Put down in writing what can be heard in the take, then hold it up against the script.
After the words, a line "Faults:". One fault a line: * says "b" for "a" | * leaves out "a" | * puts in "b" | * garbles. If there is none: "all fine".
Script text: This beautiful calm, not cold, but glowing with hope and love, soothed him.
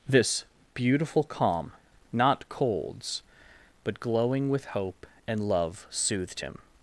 This beautiful calm, not colds, but glowing with hope and love, soothed him.
Faults:
* says "colds" for "cold"